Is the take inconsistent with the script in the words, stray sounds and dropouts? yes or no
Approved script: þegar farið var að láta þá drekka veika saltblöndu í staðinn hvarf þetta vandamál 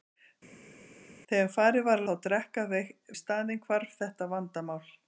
yes